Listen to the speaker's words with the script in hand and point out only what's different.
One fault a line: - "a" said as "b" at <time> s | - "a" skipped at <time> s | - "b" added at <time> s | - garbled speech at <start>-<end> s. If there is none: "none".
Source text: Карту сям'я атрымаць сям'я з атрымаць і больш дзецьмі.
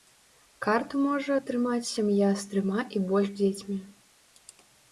- "сям'я" said as "можа" at 1.1 s
- "атрымаць" said as "трыма" at 2.5 s